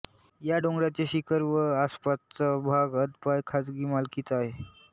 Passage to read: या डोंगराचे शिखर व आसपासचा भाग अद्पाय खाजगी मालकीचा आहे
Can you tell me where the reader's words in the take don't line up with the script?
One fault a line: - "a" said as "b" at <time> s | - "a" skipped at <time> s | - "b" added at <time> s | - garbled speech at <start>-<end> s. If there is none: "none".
none